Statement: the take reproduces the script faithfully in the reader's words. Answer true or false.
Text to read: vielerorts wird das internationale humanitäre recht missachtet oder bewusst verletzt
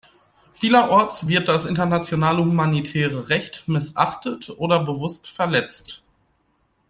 true